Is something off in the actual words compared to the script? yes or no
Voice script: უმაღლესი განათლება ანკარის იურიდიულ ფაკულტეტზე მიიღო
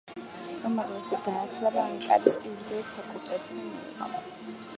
no